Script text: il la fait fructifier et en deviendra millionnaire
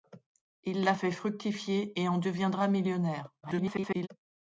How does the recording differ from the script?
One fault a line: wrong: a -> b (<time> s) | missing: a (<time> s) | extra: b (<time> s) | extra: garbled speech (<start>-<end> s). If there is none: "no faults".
extra: garbled speech (3.4-4.1 s)